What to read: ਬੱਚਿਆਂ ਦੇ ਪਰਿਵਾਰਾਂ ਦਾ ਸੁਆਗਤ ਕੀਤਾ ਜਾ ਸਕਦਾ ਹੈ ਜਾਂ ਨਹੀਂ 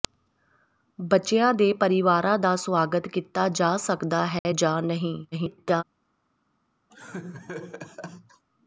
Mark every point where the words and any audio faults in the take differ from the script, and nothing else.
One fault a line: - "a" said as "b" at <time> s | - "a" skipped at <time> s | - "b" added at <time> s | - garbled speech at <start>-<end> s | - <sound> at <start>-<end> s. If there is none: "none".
- dropout at 4.4-4.5 s
- garbled speech at 5.3-5.8 s
- laugh at 6.9-8.4 s